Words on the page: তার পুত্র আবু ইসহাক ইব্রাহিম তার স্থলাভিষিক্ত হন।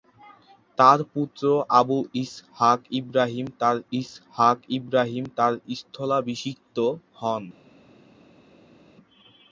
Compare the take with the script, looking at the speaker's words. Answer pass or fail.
fail